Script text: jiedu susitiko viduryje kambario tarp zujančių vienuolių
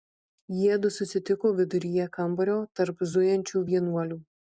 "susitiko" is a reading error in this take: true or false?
false